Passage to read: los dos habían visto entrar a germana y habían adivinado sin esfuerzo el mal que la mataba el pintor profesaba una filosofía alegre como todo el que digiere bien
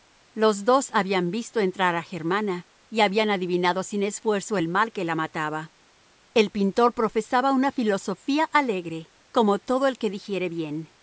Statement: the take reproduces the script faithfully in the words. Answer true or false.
true